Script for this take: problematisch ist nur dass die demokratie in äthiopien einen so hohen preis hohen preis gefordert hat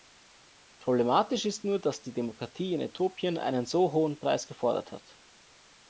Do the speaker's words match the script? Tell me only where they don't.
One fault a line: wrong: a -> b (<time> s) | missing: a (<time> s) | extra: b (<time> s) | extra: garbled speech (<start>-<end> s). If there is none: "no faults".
missing: hohen preis (4.5 s)